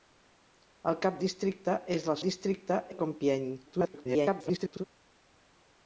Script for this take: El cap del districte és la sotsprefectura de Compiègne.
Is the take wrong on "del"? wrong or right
wrong